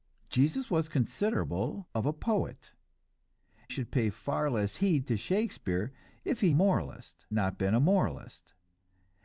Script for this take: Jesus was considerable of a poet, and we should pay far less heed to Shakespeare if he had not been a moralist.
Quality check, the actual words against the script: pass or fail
fail